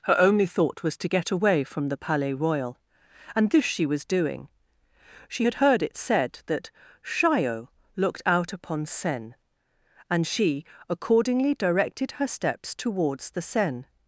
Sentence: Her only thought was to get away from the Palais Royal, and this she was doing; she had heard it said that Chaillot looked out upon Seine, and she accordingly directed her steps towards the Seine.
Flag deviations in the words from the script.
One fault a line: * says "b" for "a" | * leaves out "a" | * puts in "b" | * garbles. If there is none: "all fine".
all fine